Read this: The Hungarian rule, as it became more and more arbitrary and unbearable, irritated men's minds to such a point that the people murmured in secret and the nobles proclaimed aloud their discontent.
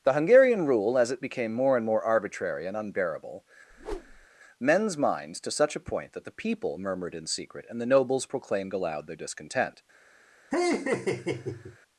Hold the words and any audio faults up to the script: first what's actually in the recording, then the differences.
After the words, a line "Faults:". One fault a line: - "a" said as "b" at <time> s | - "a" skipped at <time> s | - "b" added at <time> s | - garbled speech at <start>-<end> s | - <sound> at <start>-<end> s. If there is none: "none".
The Hungarian rule, as it became more and more arbitrary and unbearable, men's minds to such a point that the people murmured in secret and the nobles proclaimed aloud their discontent.
Faults:
- "irritated" skipped at 3.5 s
- whoosh at 3.7-4.3 s
- laugh at 10.5-11.8 s